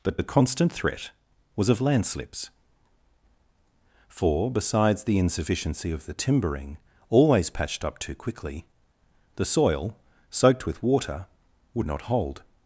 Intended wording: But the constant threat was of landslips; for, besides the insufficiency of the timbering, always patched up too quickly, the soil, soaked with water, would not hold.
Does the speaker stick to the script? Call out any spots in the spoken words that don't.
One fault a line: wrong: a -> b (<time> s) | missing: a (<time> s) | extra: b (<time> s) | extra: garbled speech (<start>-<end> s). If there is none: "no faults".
no faults